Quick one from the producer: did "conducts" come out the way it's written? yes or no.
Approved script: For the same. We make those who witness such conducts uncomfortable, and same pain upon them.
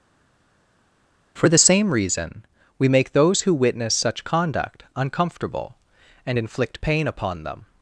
no